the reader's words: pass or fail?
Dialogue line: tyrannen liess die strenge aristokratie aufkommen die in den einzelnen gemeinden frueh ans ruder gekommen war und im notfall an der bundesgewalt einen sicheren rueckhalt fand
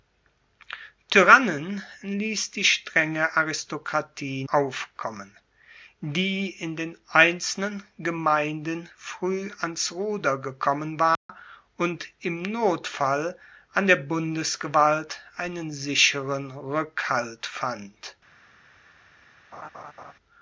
pass